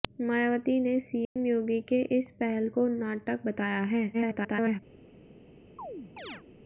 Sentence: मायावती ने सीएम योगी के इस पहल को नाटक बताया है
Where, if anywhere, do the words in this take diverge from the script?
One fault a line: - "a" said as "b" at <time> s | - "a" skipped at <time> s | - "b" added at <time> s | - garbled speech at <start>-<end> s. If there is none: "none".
- garbled speech at 4.1-4.8 s